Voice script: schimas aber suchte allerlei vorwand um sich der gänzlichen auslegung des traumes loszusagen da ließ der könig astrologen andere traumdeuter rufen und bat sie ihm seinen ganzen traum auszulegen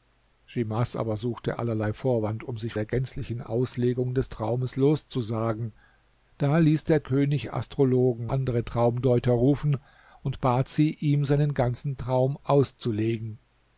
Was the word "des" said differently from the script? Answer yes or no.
no